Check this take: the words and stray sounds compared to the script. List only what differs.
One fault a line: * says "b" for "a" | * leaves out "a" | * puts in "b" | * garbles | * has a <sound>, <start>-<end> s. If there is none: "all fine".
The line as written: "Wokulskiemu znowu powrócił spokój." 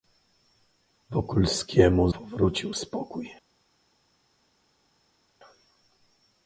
* leaves out "znowu"